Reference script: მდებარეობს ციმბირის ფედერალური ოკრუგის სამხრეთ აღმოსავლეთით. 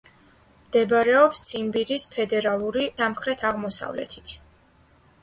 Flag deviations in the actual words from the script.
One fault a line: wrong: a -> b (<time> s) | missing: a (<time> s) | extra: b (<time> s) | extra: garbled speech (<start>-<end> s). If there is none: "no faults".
missing: ოკრუგის (2.8 s)